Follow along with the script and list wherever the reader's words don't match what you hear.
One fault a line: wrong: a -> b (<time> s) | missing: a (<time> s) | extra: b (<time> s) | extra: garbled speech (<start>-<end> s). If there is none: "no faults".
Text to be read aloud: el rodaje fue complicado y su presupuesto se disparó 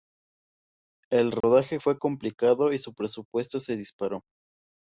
no faults